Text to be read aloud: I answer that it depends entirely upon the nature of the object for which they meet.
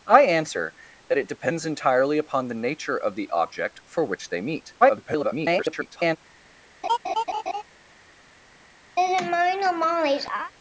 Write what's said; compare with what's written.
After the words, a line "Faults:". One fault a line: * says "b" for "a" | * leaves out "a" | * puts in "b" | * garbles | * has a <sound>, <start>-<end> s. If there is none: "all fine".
I answer that it depends entirely upon the nature of the object for which they meet. [garbled]
Faults:
* garbles
* has a laugh, 6.8-7.6 s
* has a laugh, 9.0-10.5 s